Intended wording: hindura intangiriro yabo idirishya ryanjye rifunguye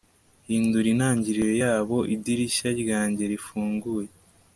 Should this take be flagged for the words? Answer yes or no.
no